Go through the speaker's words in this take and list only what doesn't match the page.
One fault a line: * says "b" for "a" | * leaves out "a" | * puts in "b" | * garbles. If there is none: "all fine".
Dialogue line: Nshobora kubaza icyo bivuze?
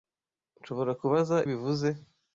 * leaves out "icyo"